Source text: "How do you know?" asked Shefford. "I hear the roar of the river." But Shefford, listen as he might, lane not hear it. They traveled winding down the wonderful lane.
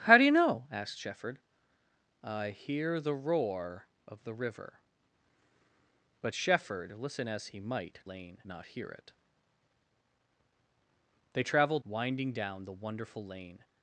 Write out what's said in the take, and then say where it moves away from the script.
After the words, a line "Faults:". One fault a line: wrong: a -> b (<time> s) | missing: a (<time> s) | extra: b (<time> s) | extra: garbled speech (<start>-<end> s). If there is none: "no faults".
"How do you know?" asked Shefford. "I hear the roar of the river." But Shefford, listen as he might, lane not hear it. They traveled winding down the wonderful lane.
Faults:
no faults